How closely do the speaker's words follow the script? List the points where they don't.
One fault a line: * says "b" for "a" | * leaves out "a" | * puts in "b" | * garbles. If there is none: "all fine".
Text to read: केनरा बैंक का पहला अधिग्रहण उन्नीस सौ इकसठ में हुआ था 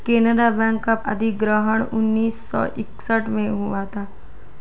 * leaves out "पहला"